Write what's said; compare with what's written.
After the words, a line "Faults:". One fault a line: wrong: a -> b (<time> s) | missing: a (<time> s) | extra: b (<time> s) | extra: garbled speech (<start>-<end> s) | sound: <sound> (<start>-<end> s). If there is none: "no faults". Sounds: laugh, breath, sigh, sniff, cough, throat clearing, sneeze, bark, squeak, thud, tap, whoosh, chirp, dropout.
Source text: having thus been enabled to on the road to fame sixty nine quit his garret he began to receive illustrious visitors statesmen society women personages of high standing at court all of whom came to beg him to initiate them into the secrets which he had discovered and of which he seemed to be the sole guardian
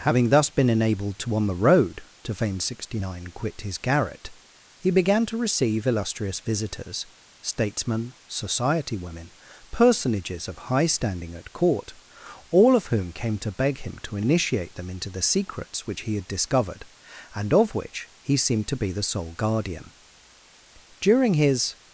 having thus been enabled to on the road to fame sixty nine quit his garret he began to receive illustrious visitors statesmen society women personages of high standing at court all of whom came to beg him to initiate them into the secrets which he had discovered and of which he seemed to be the sole guardian during his
Faults:
extra: during his (21.0 s)